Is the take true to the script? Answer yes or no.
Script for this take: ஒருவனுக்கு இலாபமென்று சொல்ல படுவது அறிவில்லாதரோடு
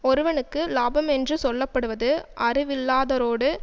yes